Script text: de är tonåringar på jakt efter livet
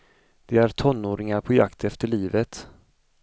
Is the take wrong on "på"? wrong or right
right